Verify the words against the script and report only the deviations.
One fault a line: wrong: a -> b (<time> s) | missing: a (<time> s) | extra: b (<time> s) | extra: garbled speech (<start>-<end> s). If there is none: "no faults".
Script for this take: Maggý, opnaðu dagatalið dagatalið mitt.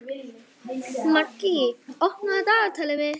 missing: dagatalið (3.0 s)